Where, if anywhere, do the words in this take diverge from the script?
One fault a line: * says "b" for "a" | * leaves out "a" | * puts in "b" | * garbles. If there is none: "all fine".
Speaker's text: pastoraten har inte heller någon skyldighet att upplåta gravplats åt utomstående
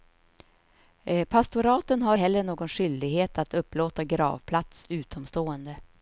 * leaves out "inte"
* leaves out "åt"